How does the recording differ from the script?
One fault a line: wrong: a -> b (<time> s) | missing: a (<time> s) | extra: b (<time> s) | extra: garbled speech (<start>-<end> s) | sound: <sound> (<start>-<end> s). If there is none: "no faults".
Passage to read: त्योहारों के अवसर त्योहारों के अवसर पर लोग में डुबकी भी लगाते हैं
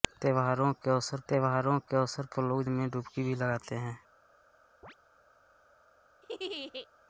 sound: chirp (4.8-5.0 s)
sound: laugh (6.2-6.9 s)